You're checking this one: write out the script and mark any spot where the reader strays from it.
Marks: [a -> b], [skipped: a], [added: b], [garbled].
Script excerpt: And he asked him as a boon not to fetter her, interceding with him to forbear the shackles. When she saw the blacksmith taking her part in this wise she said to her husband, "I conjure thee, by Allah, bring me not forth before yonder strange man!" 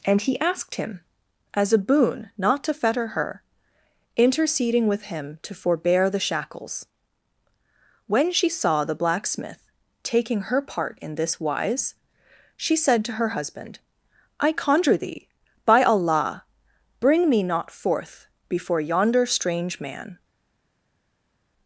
And he asked him as a boon not to fetter her, interceding with him to forbear the shackles. When she saw the blacksmith taking her part in this wise she said to her husband, "I conjure thee, by Allah, bring me not forth before yonder strange man!"